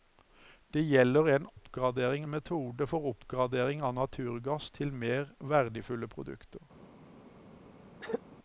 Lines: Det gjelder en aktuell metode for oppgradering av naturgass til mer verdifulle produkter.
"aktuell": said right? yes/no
no